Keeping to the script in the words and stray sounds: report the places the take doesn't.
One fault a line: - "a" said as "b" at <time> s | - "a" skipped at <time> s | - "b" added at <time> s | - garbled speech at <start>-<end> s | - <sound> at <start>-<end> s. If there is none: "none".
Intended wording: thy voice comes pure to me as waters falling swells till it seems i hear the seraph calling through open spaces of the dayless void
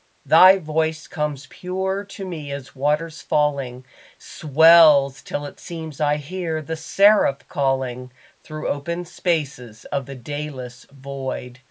none